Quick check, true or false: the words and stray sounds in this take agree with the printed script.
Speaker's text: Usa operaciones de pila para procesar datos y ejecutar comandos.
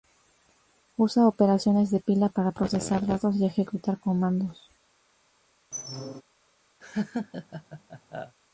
false